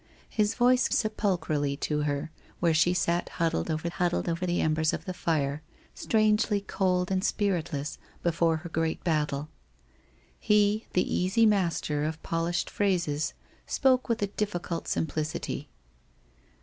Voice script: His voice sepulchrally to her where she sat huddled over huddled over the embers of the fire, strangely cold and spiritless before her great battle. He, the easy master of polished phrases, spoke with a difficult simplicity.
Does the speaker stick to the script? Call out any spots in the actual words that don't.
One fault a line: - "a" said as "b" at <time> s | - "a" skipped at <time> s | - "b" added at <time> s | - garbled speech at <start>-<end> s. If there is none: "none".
none